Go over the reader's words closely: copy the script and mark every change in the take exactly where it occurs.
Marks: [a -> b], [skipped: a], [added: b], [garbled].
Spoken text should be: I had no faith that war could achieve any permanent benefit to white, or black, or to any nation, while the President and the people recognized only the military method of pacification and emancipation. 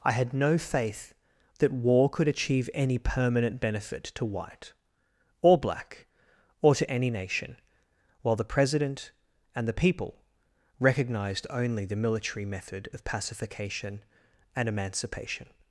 I had no faith that war could achieve any permanent benefit to white, or black, or to any nation, while the President and the people recognized only the military method of pacification and emancipation.